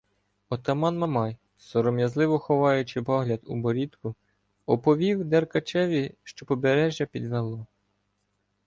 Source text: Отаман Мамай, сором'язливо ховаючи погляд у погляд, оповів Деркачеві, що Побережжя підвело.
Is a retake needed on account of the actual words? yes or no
yes